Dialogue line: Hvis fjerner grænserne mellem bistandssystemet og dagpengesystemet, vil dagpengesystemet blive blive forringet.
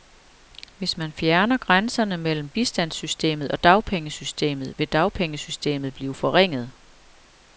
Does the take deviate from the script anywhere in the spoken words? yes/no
yes